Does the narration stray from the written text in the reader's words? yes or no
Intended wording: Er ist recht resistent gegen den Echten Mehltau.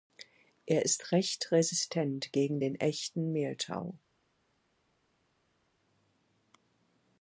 no